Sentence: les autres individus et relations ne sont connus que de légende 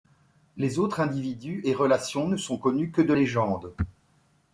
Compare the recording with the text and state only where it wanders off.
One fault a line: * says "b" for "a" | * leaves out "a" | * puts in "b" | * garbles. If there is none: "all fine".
all fine